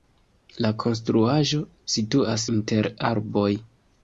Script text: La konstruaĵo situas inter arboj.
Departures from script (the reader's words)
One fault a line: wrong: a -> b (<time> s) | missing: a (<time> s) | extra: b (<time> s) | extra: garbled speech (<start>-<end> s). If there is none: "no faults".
no faults